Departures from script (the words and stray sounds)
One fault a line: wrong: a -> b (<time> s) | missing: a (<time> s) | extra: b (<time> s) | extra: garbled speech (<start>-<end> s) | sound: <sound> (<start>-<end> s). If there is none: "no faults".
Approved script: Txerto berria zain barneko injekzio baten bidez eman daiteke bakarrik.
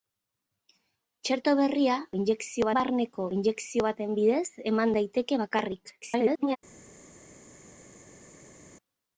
wrong: zain -> injekzio (2.2 s)
extra: garbled speech (6.0-6.6 s)